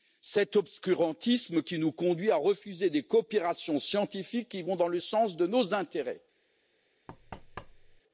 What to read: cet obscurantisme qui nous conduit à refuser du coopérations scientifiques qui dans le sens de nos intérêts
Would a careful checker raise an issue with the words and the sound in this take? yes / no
yes